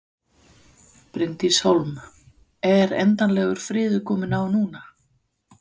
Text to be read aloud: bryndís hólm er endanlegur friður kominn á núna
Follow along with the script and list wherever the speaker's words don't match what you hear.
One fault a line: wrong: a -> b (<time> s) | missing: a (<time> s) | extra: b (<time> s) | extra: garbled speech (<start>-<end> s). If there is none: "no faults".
no faults